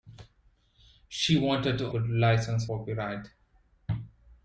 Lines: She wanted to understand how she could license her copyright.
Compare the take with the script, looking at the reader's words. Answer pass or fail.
fail